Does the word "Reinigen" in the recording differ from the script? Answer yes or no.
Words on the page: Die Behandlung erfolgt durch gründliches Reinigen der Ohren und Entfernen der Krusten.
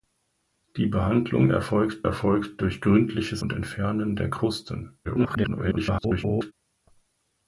yes